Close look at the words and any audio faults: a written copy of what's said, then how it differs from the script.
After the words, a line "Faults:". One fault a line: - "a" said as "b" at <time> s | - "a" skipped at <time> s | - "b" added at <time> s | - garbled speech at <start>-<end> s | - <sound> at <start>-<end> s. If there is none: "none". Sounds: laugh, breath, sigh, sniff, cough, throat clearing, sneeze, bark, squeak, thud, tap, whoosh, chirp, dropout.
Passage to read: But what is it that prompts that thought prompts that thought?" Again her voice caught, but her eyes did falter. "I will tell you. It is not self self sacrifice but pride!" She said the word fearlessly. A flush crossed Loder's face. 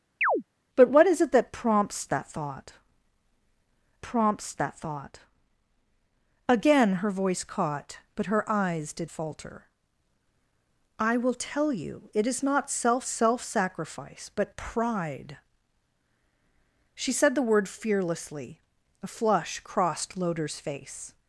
But what is it that prompts that thought prompts that thought?" Again her voice caught, but her eyes did falter. "I will tell you. It is not self self sacrifice but pride!" She said the word fearlessly. A flush crossed Loder's face.
Faults:
- chirp at 0.2-0.4 s